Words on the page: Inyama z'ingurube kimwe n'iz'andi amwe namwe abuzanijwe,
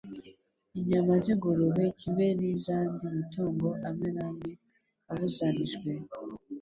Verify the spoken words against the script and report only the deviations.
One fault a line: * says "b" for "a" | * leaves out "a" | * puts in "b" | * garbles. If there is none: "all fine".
* puts in "matungo"